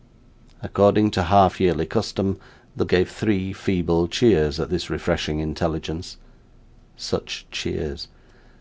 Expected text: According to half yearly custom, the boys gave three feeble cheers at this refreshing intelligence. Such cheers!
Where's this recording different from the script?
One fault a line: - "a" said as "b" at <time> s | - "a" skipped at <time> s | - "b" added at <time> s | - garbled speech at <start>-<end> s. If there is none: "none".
- "boys" skipped at 2.9 s